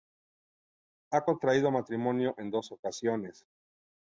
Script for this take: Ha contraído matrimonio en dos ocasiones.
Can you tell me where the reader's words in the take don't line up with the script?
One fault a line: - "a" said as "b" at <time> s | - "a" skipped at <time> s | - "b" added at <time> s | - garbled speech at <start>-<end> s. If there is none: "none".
none